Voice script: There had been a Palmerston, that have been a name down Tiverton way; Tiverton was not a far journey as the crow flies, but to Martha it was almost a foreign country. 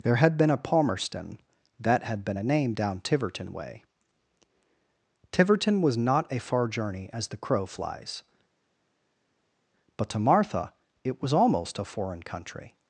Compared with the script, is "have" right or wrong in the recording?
wrong